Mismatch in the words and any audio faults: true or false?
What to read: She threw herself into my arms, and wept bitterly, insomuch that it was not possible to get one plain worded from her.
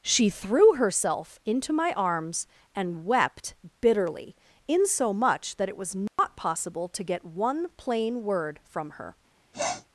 true